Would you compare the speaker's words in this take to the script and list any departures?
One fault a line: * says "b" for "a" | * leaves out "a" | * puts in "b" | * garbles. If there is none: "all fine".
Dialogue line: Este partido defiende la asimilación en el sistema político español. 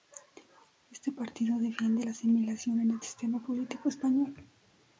all fine